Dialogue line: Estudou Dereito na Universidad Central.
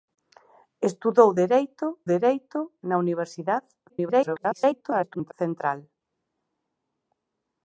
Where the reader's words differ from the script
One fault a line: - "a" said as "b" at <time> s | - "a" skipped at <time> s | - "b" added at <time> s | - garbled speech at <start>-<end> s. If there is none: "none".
- "Dereito" added at 2.1 s
- garbled speech at 3.9-5.3 s